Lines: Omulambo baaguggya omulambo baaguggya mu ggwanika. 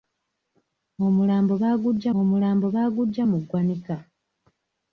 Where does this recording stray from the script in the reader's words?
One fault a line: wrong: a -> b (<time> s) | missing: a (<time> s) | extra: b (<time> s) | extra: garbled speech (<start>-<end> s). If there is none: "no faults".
no faults